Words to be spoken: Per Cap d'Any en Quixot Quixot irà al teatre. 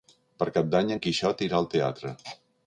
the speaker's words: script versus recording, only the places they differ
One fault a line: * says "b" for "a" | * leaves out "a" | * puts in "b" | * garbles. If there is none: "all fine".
* leaves out "Quixot"